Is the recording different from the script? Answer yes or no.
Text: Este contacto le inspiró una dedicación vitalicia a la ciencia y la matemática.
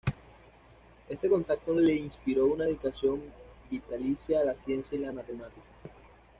no